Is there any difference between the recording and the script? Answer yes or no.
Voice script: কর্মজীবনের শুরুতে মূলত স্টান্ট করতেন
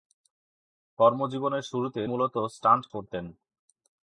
no